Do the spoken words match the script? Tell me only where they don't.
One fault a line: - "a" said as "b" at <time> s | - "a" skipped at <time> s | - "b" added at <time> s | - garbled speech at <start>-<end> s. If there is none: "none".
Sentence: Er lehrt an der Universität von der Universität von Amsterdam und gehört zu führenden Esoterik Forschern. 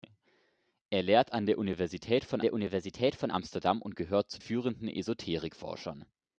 none